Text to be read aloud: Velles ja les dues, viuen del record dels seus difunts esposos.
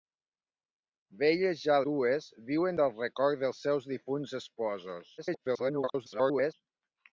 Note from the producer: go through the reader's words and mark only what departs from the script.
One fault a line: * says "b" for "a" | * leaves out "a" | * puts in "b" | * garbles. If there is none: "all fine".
* leaves out "les"
* garbles